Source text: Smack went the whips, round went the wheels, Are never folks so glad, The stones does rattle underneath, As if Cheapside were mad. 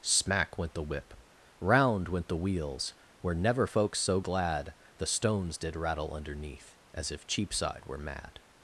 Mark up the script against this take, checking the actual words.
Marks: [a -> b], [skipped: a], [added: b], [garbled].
Smack went the [whips, -> whip] round went the wheels, [Are -> Were] never folks so glad, The stones [does -> did] rattle underneath, As if Cheapside were mad.